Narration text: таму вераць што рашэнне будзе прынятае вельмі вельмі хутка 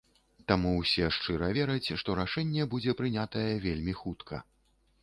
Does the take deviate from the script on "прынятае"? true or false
false